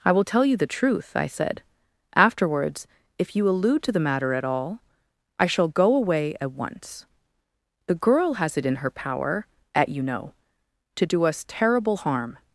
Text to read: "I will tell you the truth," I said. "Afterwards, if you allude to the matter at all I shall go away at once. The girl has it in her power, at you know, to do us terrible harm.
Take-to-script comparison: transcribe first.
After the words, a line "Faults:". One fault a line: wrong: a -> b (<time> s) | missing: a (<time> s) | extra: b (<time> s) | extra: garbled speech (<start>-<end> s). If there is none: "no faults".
"I will tell you the truth," I said. "Afterwards, if you allude to the matter at all I shall go away at once. The girl has it in her power, at you know, to do us terrible harm.
Faults:
no faults